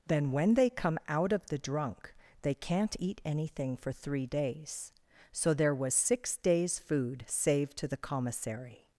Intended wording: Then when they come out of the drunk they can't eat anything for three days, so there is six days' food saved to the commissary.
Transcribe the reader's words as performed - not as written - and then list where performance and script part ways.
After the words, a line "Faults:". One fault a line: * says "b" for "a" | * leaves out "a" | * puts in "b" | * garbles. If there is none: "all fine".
Then when they come out of the drunk they can't eat anything for three days, so there was six days' food saved to the commissary.
Faults:
* says "was" for "is"